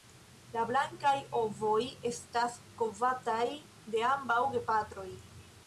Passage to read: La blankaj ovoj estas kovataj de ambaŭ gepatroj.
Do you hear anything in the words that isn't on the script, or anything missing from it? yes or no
no